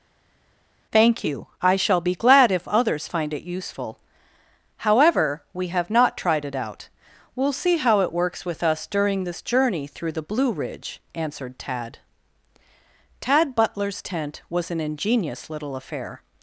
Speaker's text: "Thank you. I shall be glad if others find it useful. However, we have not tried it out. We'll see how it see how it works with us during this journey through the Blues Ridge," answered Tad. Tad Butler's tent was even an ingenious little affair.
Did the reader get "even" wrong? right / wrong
wrong